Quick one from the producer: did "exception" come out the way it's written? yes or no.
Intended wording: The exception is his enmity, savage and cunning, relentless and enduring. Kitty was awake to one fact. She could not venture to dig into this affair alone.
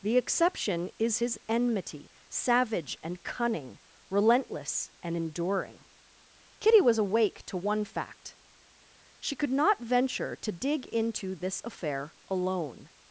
yes